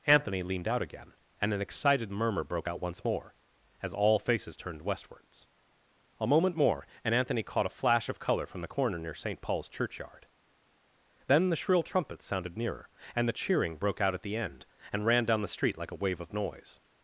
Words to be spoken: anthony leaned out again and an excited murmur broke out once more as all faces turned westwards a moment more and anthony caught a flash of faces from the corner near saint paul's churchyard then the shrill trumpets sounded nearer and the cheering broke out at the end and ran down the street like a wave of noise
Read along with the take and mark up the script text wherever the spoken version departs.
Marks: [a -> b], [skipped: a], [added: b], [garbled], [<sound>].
anthony leaned out again and an excited murmur broke out once more as all faces turned westwards a moment more and anthony caught a flash of [faces -> colour] from the corner near saint paul's churchyard then the shrill trumpets sounded nearer and the cheering broke out at the end and ran down the street like a wave of noise